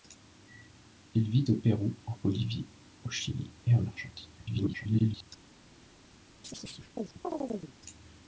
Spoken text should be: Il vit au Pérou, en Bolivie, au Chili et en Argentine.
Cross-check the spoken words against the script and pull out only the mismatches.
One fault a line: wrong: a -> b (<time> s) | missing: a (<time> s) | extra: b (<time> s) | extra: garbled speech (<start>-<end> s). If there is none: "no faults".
extra: garbled speech (4.4-5.3 s)